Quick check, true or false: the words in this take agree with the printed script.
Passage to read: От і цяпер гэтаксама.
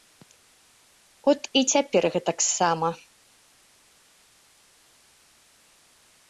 true